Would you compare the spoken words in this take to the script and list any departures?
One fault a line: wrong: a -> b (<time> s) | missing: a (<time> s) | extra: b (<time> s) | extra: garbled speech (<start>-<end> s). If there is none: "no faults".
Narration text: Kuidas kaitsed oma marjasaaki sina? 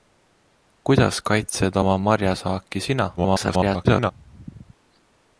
extra: garbled speech (3.2-4.1 s)